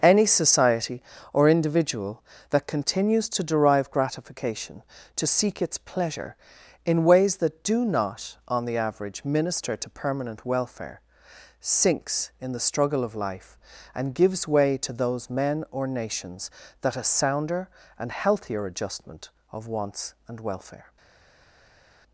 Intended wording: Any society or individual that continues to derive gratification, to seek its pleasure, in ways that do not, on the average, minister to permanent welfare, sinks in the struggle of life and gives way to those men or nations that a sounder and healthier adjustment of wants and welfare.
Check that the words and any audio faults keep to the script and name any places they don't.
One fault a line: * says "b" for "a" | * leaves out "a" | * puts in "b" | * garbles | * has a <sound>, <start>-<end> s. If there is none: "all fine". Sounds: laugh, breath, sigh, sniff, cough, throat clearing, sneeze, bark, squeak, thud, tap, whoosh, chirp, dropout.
all fine